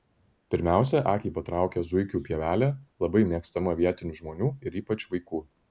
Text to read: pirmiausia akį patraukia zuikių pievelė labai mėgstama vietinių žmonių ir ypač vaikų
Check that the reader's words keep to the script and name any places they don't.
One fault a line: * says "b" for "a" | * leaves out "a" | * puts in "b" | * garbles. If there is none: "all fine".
all fine